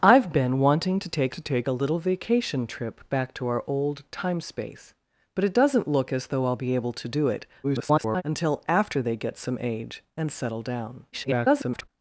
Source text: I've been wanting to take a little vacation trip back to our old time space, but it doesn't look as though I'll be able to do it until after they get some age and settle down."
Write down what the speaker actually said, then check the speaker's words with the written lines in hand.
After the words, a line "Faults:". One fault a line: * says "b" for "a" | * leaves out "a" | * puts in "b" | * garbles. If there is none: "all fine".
I've been wanting to take to take a little vacation trip back to our old time space, but it doesn't look as though I'll be able to do it [garbled] until after they get some age and settle down." [garbled]
Faults:
* puts in "to take"
* garbles
* garbles